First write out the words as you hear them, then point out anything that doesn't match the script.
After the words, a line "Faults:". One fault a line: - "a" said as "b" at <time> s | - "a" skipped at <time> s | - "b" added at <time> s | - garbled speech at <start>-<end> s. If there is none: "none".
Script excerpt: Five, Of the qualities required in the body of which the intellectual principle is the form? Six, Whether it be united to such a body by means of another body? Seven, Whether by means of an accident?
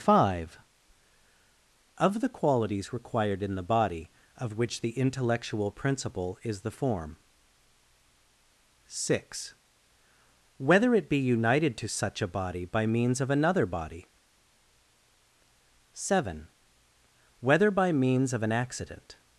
Five, Of the qualities required in the body of which the intellectual principle is the form? Six, Whether it be united to such a body by means of another body? Seven, Whether by means of an accident?
Faults:
none